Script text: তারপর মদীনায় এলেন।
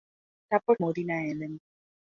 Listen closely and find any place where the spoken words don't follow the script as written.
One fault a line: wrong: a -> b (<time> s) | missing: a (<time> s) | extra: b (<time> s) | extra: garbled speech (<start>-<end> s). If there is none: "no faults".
no faults